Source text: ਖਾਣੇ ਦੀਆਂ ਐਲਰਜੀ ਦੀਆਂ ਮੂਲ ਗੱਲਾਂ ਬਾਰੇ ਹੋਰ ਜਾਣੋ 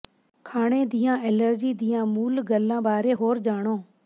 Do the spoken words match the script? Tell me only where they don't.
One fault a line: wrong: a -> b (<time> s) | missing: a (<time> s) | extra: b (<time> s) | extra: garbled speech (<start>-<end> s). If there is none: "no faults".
no faults